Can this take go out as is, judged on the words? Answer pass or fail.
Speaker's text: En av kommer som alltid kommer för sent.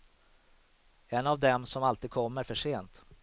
fail